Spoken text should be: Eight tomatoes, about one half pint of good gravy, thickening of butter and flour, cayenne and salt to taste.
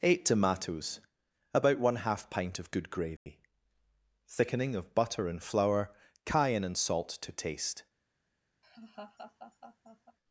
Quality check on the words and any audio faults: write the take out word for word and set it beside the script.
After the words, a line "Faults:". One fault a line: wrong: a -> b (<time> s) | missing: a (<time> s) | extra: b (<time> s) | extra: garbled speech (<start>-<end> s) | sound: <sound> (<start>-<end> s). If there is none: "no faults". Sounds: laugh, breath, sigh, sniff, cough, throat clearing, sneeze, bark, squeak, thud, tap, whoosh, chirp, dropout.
Eight tomatoes, about one half pint of good gravy, thickening of butter and flour, cayenne and salt to taste.
Faults:
sound: dropout (3.2-3.3 s)
sound: laugh (8.6-10.2 s)